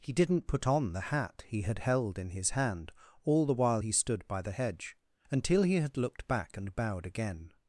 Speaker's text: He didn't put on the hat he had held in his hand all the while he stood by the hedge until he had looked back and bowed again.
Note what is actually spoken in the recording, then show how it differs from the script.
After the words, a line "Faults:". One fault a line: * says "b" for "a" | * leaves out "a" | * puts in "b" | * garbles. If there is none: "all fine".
He didn't put on the hat he had held in his hand all the while he stood by the hedge until he had looked back and bowed again.
Faults:
all fine